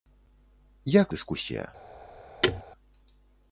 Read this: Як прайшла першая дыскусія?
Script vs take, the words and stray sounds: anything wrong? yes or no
yes